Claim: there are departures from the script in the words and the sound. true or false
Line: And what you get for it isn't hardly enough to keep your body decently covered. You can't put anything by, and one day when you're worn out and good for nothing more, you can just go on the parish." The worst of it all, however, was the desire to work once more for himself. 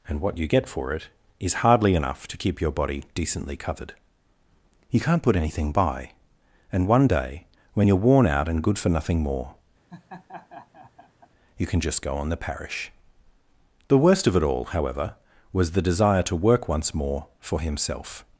true